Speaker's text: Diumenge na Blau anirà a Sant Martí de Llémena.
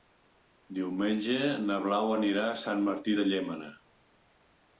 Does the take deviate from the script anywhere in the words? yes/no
no